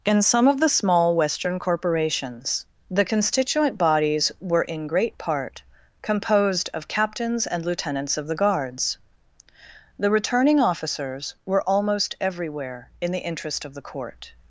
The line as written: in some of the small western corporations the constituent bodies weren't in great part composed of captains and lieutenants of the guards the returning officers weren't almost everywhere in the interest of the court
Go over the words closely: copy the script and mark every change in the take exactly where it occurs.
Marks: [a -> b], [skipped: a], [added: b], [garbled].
in some of the small western corporations the constituent bodies [weren't -> were] in great part composed of captains and lieutenants of the guards the returning officers [weren't -> were] almost everywhere in the interest of the court